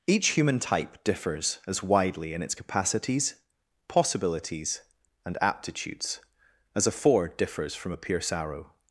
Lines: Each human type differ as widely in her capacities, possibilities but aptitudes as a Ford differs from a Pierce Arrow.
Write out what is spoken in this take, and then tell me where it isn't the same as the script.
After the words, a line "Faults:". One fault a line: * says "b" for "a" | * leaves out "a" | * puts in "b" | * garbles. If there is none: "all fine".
Each human type differs as widely in its capacities, possibilities and aptitudes as a Ford differs from a Pierce Arrow.
Faults:
* says "differs" for "differ"
* says "its" for "her"
* says "and" for "but"